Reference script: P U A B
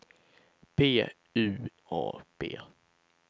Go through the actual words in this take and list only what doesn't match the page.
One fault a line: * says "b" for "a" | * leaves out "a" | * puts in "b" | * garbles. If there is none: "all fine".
all fine